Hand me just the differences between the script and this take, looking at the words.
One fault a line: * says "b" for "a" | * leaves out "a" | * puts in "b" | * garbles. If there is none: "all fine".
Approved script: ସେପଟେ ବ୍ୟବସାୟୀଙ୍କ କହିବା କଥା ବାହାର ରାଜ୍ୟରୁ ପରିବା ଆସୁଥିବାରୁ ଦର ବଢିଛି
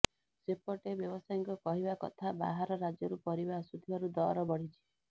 all fine